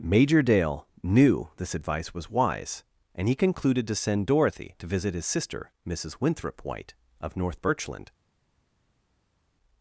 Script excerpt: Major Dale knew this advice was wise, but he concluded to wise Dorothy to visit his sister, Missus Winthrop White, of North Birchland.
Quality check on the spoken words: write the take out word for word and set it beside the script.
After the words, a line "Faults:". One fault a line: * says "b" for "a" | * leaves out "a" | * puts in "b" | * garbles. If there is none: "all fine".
Major Dale knew this advice was wise, and he concluded to send Dorothy to visit his sister, Missus Winthrop White, of North Birchland.
Faults:
* says "and" for "but"
* says "send" for "wise"